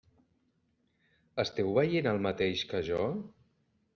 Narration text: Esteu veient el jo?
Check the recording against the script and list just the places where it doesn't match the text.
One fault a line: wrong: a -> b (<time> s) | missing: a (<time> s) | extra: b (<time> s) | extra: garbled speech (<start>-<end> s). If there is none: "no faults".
extra: mateix que (2.3 s)